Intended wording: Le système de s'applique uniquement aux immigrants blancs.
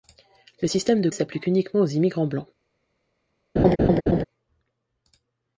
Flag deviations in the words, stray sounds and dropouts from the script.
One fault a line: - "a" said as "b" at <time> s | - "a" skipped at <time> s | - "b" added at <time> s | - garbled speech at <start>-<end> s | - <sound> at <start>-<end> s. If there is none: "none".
- laugh at 3.6-4.2 s